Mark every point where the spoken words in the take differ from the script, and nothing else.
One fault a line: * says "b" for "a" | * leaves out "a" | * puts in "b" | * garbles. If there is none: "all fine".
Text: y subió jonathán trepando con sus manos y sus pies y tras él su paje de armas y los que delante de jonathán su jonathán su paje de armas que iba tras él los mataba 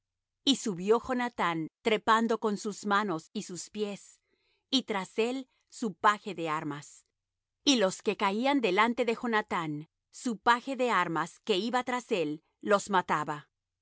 * puts in "caían"
* leaves out "jonathán su"